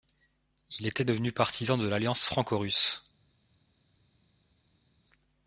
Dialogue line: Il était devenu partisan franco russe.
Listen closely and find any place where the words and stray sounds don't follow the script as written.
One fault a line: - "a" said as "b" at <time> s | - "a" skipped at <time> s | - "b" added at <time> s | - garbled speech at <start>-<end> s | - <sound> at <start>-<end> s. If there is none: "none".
- "de l'alliance" added at 1.8 s